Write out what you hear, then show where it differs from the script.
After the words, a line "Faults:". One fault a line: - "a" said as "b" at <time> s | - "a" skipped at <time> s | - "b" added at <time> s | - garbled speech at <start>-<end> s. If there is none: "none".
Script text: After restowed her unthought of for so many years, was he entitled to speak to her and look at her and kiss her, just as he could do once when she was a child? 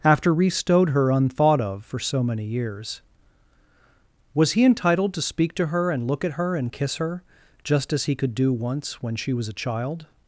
After restowed her unthought of for so many years, was he entitled to speak to her and look at her and kiss her, just as he could do once when she was a child?
Faults:
none